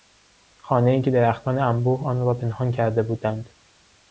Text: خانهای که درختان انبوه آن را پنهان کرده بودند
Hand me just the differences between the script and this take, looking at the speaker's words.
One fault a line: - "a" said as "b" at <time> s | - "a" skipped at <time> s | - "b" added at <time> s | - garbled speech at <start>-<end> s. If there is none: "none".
none